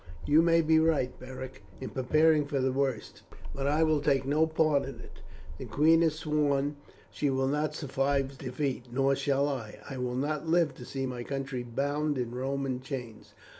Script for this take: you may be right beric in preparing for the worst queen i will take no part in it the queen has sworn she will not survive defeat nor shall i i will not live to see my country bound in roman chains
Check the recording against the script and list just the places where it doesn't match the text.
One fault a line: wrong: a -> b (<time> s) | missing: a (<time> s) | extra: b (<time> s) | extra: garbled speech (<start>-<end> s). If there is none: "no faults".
wrong: queen -> but (3.5 s)